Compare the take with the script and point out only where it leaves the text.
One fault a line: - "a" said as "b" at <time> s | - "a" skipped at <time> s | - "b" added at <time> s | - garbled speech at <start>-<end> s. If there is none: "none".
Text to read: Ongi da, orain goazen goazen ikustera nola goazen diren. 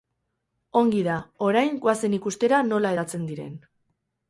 - "goazen" skipped at 2.2 s
- "goazen" said as "hedatzen" at 2.9 s